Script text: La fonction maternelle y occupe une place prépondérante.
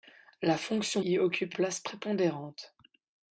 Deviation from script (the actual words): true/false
true